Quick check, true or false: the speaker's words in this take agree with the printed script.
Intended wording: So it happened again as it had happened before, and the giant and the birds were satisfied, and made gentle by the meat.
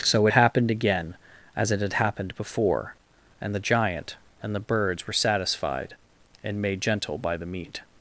true